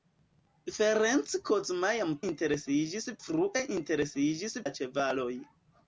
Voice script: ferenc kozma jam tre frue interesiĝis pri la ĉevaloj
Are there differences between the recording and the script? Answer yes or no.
yes